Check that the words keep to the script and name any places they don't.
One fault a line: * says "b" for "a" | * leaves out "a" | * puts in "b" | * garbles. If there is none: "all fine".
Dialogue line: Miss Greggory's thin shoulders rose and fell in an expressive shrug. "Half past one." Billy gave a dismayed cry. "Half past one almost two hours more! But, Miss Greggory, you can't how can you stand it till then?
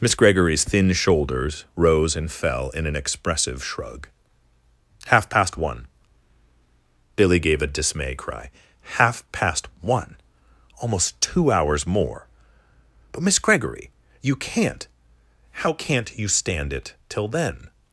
* says "dismay" for "dismayed"
* says "can't" for "can"